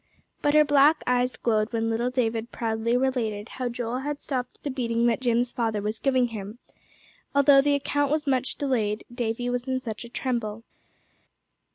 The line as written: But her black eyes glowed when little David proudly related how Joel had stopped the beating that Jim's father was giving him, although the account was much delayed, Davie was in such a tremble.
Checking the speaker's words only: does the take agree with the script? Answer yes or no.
yes